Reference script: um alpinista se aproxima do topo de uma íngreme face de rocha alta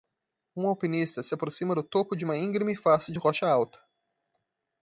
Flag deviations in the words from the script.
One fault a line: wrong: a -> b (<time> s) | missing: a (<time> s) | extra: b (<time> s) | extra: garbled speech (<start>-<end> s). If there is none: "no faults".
no faults